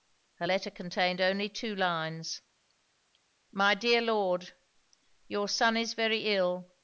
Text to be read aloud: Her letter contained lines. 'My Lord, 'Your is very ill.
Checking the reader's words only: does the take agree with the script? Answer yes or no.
no